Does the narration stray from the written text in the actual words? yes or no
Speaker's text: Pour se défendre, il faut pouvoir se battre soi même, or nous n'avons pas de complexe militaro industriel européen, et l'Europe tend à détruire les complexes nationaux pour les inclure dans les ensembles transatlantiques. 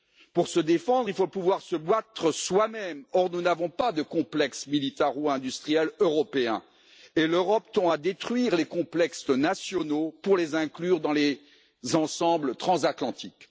no